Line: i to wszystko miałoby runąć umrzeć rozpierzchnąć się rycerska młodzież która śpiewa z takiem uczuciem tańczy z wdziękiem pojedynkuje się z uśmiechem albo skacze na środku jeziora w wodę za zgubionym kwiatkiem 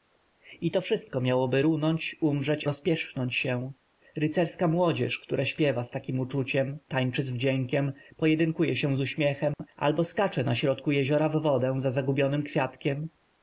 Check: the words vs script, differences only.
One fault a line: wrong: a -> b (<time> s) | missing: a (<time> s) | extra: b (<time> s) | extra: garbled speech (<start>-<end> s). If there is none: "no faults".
no faults